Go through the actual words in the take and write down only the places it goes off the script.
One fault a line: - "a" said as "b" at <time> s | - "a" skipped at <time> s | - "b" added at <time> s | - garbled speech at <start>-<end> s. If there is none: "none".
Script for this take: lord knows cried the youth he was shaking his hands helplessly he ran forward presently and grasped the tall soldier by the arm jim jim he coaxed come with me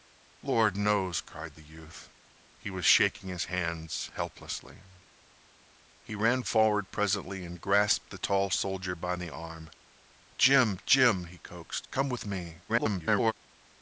- garbled speech at 12.7-13.3 s